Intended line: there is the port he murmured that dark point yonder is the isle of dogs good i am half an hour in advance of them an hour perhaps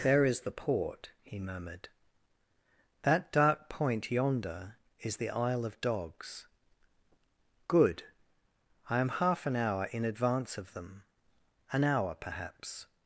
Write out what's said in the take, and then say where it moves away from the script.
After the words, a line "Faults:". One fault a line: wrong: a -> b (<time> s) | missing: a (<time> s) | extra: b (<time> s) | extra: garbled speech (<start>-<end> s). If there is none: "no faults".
there is the port he murmured that dark point yonder is the isle of dogs good i am half an hour in advance of them an hour perhaps
Faults:
no faults